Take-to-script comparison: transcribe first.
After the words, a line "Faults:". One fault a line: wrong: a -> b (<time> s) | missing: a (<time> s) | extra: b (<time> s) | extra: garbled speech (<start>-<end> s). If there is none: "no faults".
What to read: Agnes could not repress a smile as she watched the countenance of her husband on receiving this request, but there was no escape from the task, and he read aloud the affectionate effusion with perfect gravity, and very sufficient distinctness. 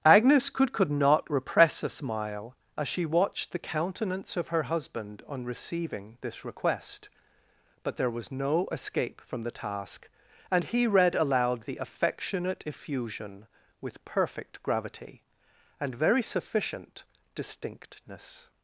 Agnes could could not repress a smile as she watched the countenance of her husband on receiving this request, but there was no escape from the task, and he read aloud the affectionate effusion with perfect gravity, and very sufficient distinctness.
Faults:
extra: could (0.7 s)